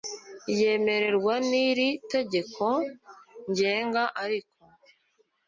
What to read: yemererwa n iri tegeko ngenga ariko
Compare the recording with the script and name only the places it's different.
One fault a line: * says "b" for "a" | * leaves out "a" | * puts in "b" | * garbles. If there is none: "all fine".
all fine